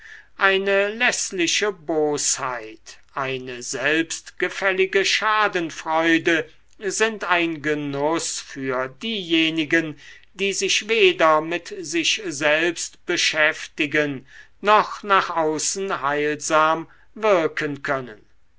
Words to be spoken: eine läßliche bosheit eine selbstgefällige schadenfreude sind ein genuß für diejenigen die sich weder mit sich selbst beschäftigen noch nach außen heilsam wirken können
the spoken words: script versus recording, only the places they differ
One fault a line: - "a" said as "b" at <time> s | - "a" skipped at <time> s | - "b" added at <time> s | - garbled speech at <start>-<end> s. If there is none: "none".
none